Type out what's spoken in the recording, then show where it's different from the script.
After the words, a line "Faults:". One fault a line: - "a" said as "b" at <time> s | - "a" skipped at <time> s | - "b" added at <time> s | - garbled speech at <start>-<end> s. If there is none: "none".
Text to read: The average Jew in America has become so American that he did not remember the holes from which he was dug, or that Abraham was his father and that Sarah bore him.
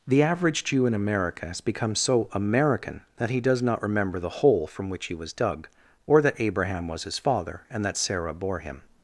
The average Jew in America has become so American that he does not remember the hole from which he was dug, or that Abraham was his father and that Sarah bore him.
Faults:
- "did" said as "does" at 3.4 s
- "holes" said as "hole" at 4.3 s